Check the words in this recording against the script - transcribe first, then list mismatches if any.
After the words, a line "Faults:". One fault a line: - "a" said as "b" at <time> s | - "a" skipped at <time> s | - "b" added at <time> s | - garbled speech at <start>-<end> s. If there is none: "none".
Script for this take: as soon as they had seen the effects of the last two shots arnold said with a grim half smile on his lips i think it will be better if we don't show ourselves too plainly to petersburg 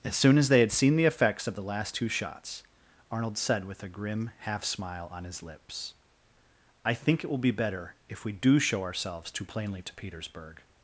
as soon as they had seen the effects of the last two shots arnold said with a grim half smile on his lips i think it will be better if we do show ourselves too plainly to petersburg
Faults:
- "don't" said as "do" at 8.3 s